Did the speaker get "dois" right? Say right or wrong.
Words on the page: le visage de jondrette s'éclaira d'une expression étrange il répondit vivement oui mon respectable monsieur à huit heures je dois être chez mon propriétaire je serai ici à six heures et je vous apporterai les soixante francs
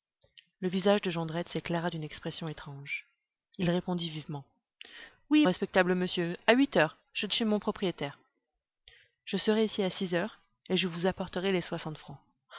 wrong